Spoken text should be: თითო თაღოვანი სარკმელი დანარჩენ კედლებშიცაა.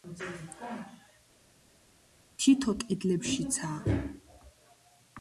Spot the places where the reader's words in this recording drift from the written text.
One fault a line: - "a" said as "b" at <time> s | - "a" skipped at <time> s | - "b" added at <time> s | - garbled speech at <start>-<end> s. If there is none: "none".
- "თაღოვანი სარკმელი დანარჩენ" skipped at 2.7 s